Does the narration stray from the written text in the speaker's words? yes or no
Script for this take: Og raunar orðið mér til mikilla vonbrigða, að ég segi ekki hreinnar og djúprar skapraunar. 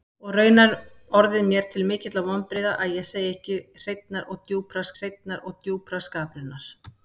yes